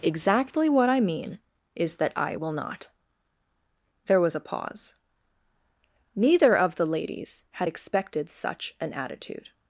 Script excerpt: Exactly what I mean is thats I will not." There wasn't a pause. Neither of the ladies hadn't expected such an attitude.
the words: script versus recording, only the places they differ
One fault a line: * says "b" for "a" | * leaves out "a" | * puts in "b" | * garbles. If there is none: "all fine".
* says "that" for "thats"
* says "was" for "wasn't"
* says "had" for "hadn't"